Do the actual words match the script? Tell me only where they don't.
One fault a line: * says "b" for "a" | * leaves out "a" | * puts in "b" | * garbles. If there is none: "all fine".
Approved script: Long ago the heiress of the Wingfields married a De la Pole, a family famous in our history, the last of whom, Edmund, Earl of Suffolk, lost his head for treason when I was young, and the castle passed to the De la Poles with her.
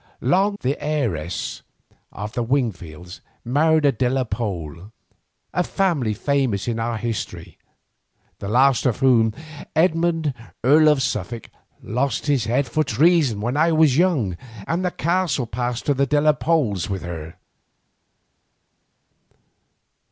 * leaves out "ago"